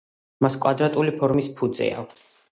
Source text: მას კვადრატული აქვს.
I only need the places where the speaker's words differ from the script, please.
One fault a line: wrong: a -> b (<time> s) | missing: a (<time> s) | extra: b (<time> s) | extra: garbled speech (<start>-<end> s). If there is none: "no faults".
extra: ფორმის ფუძე (1.2 s)